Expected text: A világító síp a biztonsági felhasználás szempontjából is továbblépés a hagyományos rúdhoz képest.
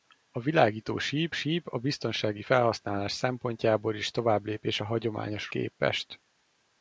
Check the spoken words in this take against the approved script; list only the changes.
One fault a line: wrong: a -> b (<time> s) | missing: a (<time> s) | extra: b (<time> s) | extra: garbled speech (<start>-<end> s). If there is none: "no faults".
extra: síp (1.3 s)
missing: rúdhoz (5.5 s)